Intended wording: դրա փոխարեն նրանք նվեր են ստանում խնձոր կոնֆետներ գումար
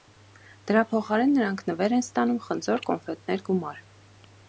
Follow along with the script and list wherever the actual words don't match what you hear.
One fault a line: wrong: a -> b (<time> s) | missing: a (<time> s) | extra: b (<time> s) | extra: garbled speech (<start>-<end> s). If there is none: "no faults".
no faults